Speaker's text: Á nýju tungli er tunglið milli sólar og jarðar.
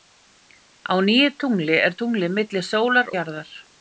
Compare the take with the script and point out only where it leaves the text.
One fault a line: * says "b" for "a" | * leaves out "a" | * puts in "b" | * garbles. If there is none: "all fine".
* leaves out "og"